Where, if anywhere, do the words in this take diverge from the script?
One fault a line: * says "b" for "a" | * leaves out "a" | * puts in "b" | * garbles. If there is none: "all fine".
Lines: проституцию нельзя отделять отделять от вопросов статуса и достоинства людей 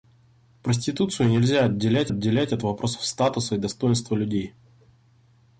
all fine